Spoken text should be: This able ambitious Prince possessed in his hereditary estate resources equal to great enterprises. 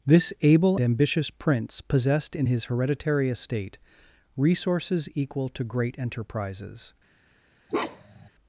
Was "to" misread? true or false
false